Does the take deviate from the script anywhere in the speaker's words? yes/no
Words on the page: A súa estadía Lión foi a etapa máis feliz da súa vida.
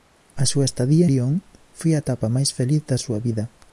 no